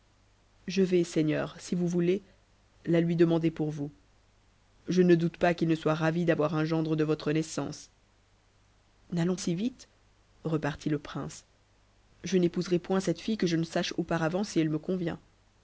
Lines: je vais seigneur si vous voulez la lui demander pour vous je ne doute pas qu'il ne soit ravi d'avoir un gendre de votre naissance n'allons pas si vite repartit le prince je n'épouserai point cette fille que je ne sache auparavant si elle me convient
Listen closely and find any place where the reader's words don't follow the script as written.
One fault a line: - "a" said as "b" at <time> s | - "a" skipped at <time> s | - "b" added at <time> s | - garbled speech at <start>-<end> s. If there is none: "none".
- "pas" skipped at 9.3 s